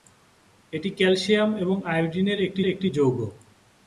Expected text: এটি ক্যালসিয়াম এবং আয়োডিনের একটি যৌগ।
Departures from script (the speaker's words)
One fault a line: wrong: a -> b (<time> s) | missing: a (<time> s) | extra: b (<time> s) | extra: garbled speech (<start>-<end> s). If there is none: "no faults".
extra: একটি (2.7 s)